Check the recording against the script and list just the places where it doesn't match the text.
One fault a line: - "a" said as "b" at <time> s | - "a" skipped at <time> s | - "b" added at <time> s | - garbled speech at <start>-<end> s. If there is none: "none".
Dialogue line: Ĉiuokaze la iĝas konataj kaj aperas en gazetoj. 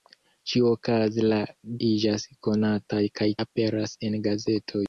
none